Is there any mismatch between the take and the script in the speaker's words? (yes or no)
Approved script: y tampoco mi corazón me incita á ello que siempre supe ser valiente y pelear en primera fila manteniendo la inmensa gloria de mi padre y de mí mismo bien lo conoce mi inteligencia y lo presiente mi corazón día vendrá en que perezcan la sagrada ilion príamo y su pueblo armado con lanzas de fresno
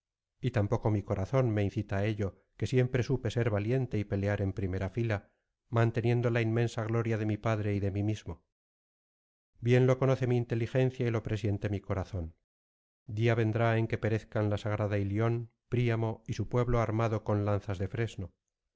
no